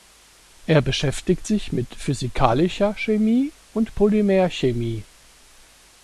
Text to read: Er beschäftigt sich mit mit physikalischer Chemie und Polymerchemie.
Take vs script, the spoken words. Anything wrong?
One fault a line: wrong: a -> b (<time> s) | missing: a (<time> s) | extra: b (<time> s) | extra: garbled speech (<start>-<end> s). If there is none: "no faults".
missing: mit (1.9 s)